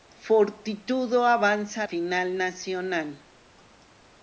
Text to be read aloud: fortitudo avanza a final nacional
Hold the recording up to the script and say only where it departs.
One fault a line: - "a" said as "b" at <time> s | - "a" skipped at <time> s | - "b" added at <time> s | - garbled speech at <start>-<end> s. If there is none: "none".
none